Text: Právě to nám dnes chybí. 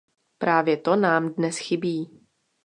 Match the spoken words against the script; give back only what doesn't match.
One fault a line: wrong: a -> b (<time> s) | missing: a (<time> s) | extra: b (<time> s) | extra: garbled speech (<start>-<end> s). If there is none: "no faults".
no faults